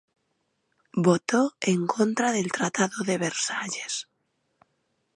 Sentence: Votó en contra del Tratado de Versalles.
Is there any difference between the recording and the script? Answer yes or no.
no